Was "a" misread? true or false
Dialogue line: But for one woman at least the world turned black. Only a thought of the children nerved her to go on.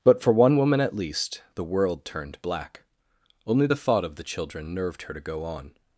true